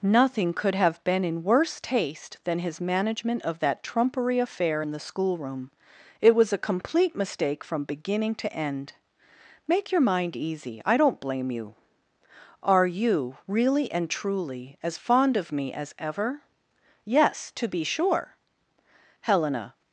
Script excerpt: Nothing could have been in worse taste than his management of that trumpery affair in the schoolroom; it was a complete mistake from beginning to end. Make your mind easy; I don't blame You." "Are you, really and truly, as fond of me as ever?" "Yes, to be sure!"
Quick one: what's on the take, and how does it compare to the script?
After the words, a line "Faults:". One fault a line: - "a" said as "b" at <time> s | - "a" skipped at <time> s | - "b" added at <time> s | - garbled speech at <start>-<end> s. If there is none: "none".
Nothing could have been in worse taste than his management of that trumpery affair in the schoolroom; it was a complete mistake from beginning to end. Make your mind easy; I don't blame You." "Are you, really and truly, as fond of me as ever?" "Yes, to be sure!" Helena
Faults:
- "Helena" added at 19.2 s